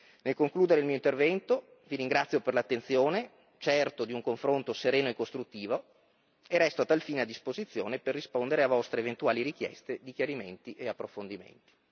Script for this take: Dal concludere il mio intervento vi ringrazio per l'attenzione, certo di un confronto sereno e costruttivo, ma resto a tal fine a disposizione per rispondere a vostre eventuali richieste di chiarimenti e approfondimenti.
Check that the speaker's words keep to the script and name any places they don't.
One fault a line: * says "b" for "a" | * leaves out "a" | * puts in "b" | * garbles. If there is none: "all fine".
* says "Nel" for "Dal"
* says "e" for "ma"